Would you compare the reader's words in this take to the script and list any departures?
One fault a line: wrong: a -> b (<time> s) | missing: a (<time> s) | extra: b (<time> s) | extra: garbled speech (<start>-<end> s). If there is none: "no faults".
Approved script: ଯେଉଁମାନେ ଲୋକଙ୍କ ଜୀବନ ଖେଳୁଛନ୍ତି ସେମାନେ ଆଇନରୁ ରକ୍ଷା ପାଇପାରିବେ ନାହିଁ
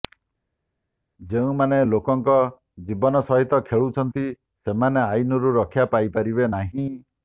extra: ସହିତ (3.2 s)